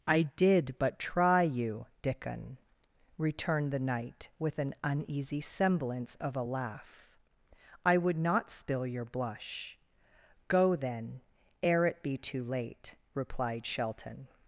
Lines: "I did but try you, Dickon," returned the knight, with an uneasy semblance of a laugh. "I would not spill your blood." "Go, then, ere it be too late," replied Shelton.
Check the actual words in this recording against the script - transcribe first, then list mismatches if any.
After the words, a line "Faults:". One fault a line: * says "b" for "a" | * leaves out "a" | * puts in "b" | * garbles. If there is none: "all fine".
"I did but try you, Dickon," returned the knight, with an uneasy semblance of a laugh. "I would not spill your blush." "Go, then, ere it be too late," replied Shelton.
Faults:
* says "blush" for "blood"